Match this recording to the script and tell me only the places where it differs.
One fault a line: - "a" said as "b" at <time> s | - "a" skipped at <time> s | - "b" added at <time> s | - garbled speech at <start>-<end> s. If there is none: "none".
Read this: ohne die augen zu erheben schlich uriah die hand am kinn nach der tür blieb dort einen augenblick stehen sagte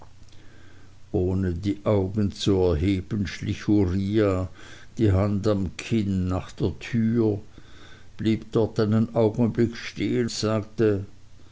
none